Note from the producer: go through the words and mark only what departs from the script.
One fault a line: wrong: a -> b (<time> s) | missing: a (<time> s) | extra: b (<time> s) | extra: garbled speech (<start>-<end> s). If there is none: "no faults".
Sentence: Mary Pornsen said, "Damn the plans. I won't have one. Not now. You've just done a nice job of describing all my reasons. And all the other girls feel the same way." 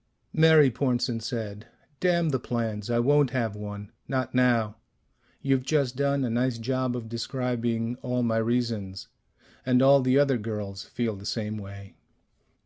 no faults